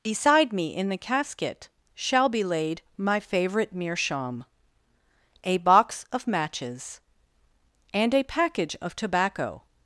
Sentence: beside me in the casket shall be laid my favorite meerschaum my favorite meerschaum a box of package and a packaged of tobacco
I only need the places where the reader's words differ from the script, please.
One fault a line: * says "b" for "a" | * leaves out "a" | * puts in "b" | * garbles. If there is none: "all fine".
* leaves out "my favorite meerschaum"
* says "matches" for "package"
* says "package" for "packaged"